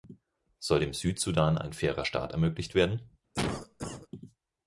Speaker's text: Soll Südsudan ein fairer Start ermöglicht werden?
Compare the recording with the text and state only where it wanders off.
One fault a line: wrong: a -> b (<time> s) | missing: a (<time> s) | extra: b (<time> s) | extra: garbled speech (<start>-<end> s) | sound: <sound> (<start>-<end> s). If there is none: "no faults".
extra: dem (0.8 s)
sound: cough (3.3-4.1 s)